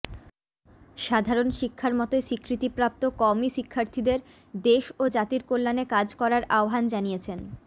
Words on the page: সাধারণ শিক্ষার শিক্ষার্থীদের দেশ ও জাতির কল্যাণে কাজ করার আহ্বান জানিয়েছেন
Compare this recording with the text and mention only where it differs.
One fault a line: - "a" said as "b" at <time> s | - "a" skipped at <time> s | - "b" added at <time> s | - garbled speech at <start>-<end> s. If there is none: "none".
- "মতোই স্বীকৃতিপ্রাপ্ত কওমি" added at 1.9 s